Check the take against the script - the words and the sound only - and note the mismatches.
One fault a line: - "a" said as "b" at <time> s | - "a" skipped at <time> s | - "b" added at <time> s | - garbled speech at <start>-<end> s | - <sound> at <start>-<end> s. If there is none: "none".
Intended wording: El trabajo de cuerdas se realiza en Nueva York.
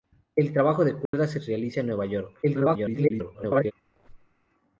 - dropout at 1.1-1.1 s
- garbled speech at 2.4-3.7 s
- squeak at 3.9-4.5 s